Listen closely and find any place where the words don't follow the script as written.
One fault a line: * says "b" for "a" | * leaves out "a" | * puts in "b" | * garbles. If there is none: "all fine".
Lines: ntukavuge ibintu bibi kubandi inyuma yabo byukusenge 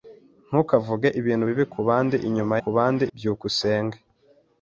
* says "kubandi" for "yabo"